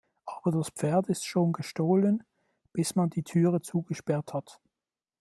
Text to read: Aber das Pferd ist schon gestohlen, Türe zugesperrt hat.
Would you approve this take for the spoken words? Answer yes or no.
no